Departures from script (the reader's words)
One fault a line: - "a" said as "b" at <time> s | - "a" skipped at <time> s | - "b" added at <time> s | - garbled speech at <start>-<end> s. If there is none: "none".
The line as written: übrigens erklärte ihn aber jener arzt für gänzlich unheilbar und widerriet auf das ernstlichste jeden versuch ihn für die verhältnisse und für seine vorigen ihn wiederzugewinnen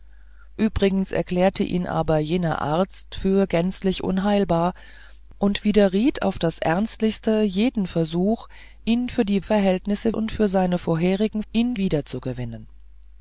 none